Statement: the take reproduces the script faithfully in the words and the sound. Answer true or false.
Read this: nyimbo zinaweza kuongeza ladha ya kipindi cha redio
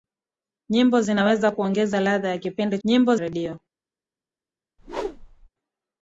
false